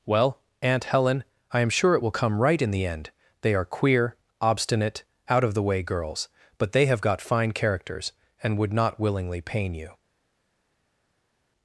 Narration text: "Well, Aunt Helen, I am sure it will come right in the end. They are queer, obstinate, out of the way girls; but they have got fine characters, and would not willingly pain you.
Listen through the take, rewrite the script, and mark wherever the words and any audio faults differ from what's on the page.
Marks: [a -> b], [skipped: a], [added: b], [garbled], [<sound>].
"Well, Aunt Helen, I am sure it will come right in the end. They are queer, obstinate, out of the way girls; but they have got fine characters, and would not willingly pain you.